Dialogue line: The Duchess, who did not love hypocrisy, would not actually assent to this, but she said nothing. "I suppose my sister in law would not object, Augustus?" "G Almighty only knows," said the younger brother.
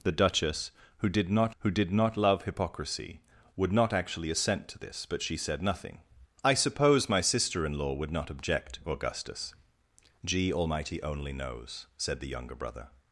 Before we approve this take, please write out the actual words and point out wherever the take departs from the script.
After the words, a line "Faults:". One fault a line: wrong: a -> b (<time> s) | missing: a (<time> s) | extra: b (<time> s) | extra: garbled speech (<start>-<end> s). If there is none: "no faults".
The Duchess, who did not who did not love hypocrisy, would not actually assent to this, but she said nothing. "I suppose my sister in law would not object, Augustus?" "G Almighty only knows," said the younger brother.
Faults:
extra: who did not (1.6 s)